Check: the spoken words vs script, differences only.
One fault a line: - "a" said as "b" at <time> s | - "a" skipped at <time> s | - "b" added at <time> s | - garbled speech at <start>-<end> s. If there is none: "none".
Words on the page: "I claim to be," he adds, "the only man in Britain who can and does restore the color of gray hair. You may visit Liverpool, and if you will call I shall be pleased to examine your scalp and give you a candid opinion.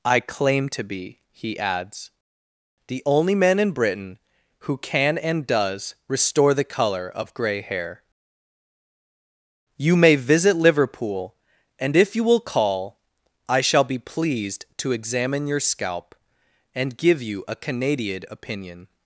- "candid" said as "canadian" at 17.6 s